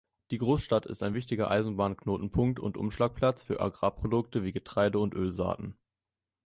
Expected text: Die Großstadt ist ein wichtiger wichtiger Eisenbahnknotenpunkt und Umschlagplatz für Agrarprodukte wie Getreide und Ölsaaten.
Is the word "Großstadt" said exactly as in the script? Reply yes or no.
yes